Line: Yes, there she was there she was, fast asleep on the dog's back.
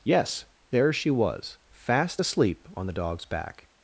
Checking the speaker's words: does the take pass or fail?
fail